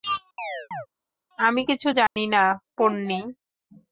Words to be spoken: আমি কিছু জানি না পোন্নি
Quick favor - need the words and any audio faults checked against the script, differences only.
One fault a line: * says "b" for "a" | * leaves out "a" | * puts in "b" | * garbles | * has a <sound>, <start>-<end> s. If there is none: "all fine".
* has a chirp, 0.4-0.9 s
* has a dropout, 2.1-2.2 s